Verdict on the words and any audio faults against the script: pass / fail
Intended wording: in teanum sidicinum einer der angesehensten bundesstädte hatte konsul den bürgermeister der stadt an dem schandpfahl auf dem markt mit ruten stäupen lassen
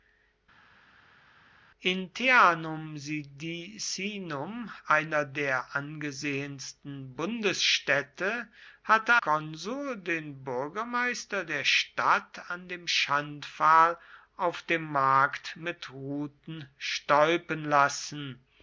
pass